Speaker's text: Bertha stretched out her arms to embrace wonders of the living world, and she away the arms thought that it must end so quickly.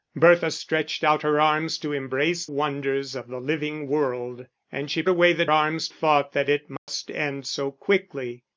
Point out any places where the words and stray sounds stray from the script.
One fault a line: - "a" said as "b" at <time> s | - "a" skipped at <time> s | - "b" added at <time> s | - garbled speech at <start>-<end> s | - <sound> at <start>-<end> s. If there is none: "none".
- dropout at 6.8-6.9 s